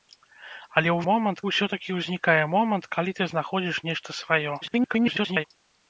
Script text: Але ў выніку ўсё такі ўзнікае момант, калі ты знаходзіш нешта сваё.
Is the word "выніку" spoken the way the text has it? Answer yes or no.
no